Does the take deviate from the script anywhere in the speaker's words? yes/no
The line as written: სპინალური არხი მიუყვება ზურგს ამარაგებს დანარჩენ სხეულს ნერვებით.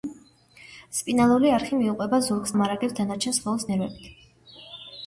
no